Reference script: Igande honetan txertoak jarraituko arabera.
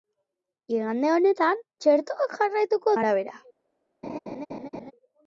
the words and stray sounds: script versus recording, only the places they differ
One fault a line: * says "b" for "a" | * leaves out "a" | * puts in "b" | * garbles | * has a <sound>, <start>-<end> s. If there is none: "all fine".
* has a laugh, 4.0-4.9 s